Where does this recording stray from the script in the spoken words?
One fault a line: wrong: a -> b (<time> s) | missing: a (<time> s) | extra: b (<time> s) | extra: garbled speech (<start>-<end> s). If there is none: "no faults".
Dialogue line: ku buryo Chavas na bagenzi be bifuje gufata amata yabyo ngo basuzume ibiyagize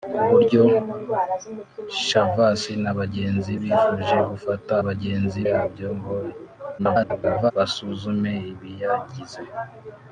missing: be (3.5 s)
wrong: amata -> bagenzi (4.9 s)
extra: garbled speech (6.8-7.5 s)